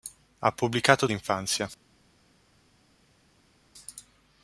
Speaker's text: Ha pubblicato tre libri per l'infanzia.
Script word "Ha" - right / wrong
right